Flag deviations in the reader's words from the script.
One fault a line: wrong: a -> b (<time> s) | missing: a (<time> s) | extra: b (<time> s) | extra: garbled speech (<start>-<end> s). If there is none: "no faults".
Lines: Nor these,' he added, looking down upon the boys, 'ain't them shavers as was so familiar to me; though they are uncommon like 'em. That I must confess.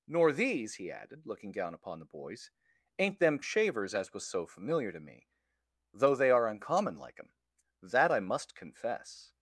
no faults